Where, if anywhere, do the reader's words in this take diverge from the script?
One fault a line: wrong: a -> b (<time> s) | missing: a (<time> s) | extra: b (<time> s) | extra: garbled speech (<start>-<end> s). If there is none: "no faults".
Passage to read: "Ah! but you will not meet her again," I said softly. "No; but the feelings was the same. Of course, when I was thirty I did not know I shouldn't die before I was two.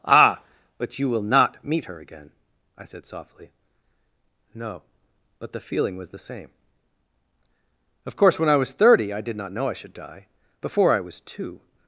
wrong: feelings -> feeling (5.6 s)
wrong: shouldn't -> should (9.7 s)